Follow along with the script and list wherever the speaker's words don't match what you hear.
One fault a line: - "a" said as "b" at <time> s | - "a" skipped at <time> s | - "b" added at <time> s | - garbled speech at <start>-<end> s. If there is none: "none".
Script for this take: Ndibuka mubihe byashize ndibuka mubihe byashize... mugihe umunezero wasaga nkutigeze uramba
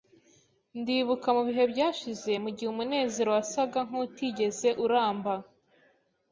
- "ndibuka mubihe byashize" skipped at 2.3 s